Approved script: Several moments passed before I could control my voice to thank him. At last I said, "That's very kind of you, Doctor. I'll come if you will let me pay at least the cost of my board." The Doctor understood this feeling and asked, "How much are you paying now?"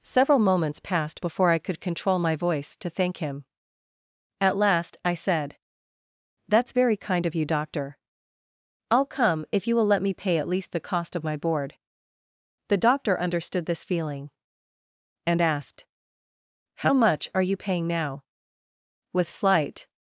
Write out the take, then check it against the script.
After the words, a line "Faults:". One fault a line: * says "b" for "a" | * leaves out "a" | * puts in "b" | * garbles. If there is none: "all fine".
Several moments passed before I could control my voice to thank him. At last I said, "That's very kind of you, Doctor. I'll come if you will let me pay at least the cost of my board." The Doctor understood this feeling and asked, "How much are you paying now?" With slight
Faults:
* puts in "With slight"